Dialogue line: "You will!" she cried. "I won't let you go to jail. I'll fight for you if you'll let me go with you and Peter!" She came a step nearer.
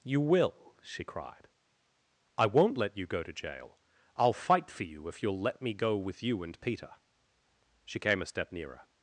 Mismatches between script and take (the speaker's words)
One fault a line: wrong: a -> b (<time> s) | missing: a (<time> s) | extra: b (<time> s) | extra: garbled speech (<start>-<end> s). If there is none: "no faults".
no faults